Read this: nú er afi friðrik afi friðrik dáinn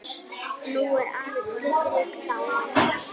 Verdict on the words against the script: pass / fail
fail